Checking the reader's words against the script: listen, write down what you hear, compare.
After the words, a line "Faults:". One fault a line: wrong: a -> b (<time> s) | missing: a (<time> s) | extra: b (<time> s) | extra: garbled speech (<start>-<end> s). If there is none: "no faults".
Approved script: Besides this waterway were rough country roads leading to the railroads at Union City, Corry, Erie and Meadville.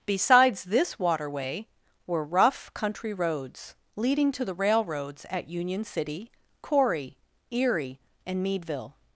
Besides this waterway were rough country roads leading to the railroads at Union City, Corry, Erie and Meadville.
Faults:
no faults